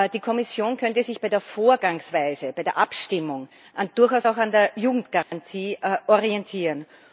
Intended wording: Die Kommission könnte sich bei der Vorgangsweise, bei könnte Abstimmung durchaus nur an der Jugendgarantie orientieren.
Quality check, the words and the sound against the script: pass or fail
fail